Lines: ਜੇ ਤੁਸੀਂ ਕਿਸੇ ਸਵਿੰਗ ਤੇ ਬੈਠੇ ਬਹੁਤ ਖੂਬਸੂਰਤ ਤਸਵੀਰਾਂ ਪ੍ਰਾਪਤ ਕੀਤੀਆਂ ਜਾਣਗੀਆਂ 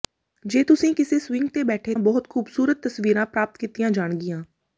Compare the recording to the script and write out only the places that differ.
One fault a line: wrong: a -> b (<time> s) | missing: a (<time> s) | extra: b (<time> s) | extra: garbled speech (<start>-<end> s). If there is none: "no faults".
no faults